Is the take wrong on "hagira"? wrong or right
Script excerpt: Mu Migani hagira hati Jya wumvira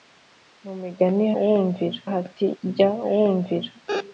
wrong